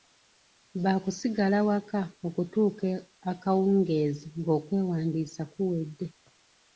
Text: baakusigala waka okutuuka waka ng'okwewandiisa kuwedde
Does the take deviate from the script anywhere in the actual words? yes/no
yes